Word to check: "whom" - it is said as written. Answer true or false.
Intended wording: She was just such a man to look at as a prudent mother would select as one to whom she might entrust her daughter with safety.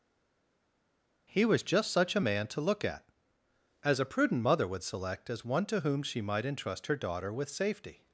true